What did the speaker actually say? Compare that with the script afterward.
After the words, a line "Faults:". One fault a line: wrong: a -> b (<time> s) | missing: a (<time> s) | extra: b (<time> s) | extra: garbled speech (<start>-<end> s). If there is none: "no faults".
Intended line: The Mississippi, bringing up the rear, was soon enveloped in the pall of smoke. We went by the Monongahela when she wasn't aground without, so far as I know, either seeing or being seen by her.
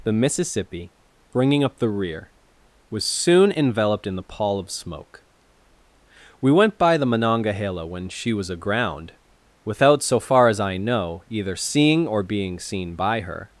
The Mississippi, bringing up the rear, was soon enveloped in the pall of smoke. We went by the Monongahela when she was aground without, so far as I know, either seeing or being seen by her.
Faults:
wrong: wasn't -> was (8.3 s)